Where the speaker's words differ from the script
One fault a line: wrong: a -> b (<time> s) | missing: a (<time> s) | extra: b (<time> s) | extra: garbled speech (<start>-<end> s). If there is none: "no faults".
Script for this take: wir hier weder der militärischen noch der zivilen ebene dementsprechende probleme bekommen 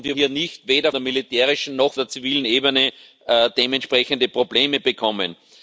no faults